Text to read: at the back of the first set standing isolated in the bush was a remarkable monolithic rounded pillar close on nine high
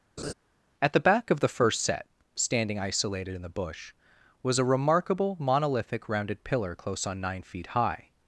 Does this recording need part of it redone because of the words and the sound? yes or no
yes